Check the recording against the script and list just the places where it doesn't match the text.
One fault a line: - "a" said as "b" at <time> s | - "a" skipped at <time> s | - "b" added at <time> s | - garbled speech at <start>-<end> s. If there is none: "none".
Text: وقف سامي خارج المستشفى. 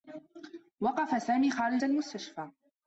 none